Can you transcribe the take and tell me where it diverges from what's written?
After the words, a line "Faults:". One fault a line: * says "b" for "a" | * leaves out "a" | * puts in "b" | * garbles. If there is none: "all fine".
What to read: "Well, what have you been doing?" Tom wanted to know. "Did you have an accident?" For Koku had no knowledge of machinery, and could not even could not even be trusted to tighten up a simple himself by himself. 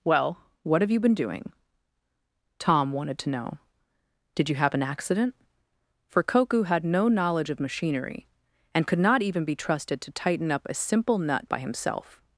"Well, what have you been doing?" Tom wanted to know. "Did you have an accident?" For Koku had no knowledge of machinery, and could not even be trusted to tighten up a simple nut by himself.
Faults:
* leaves out "could not even"
* says "nut" for "himself"